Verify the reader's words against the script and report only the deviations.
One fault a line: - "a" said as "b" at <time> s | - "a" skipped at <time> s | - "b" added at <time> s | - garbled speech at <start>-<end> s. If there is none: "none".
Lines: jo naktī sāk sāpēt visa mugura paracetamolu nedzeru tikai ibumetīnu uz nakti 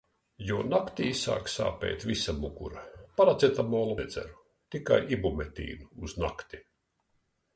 none